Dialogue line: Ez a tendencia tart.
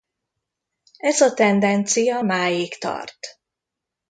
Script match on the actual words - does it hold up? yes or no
no